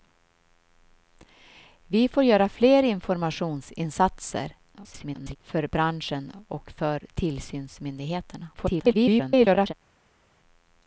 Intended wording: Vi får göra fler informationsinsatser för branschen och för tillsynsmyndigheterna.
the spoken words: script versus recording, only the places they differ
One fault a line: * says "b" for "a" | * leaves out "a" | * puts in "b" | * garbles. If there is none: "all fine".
* garbles
* garbles